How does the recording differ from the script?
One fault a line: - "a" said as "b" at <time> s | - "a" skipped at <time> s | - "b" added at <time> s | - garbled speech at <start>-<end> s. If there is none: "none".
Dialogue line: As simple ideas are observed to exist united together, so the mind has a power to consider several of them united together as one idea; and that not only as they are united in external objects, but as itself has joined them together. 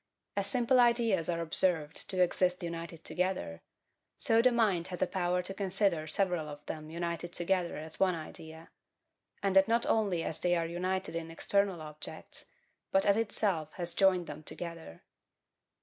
none